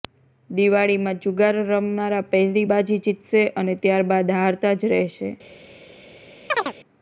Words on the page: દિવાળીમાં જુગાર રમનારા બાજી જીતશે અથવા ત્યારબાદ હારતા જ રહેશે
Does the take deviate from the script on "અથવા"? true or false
true